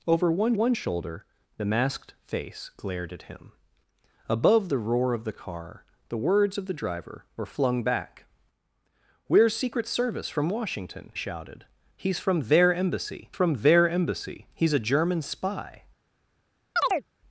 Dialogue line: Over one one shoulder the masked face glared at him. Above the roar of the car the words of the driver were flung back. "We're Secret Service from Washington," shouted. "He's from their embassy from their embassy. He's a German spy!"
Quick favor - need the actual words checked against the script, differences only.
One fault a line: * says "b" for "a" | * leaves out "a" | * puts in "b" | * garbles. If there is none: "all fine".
all fine